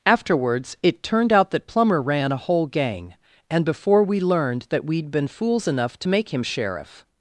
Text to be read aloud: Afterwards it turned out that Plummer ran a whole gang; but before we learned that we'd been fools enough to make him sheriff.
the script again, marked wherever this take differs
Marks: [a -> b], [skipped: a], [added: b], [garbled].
Afterwards it turned out that Plummer ran a whole gang; [but -> and] before we learned that we'd been fools enough to make him sheriff.